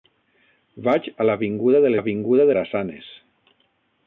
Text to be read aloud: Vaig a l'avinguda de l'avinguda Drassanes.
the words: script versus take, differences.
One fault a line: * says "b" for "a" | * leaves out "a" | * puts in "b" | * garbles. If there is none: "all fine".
all fine